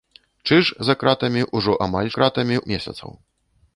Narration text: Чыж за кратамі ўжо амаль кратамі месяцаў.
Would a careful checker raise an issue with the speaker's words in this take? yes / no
no